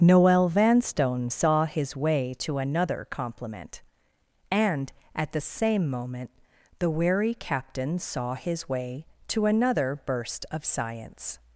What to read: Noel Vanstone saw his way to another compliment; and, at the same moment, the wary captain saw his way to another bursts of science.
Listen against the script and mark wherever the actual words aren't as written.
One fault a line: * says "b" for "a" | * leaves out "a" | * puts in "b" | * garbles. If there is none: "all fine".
* says "burst" for "bursts"